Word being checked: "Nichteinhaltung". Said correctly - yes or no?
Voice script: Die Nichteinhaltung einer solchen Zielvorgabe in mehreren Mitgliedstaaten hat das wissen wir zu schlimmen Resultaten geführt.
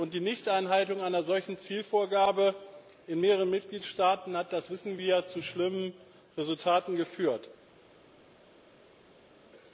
yes